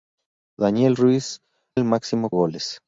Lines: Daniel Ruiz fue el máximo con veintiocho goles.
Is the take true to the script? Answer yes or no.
no